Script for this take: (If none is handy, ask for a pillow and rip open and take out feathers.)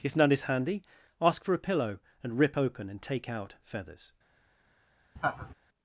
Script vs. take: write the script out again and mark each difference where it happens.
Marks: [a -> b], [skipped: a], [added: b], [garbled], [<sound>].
(If none is handy, ask for a pillow and rip open and take out feathers.) [laugh]